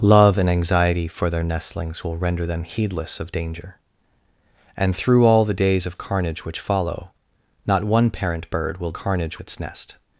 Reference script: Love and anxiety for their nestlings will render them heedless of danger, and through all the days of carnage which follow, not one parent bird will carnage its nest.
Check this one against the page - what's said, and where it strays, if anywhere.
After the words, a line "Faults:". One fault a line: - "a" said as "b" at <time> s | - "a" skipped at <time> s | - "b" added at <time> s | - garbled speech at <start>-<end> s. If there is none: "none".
Love and anxiety for their nestlings will render them heedless of danger, and through all the days of carnage which follow, not one parent bird will carnage its nest.
Faults:
none